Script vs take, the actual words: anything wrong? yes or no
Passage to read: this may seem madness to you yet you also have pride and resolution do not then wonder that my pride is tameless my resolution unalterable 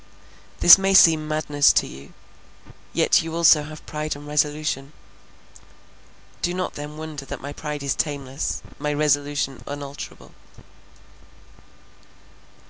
no